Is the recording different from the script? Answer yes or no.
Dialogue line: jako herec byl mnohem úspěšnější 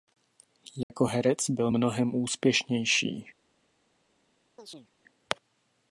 no